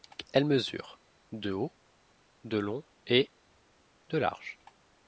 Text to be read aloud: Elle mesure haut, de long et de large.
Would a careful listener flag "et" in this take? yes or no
no